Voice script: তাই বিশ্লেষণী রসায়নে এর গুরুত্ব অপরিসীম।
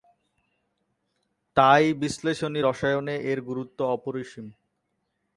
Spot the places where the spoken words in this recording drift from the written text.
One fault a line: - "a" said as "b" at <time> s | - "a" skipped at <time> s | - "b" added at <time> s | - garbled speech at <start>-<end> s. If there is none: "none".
none